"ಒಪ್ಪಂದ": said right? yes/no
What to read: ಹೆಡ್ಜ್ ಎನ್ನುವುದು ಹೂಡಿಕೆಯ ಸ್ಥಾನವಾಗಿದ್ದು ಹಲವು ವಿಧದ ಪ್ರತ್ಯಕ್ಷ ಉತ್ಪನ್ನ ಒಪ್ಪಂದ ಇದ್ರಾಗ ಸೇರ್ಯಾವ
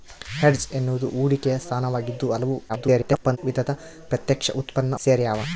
no